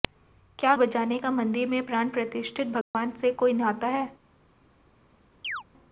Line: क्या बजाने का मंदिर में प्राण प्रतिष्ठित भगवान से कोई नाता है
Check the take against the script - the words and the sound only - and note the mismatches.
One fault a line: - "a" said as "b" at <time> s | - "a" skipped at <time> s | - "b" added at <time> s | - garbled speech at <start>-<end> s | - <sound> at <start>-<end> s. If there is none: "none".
- dropout at 2.8-2.9 s
- chirp at 5.4-5.6 s